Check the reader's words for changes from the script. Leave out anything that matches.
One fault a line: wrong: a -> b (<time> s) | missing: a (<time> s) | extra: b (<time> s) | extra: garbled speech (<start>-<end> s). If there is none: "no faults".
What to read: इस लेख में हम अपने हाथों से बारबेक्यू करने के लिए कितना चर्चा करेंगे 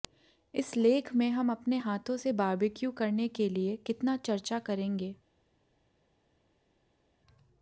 no faults